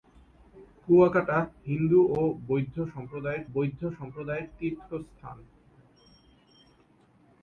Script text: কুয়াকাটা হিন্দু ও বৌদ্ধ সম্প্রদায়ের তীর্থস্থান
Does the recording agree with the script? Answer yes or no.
no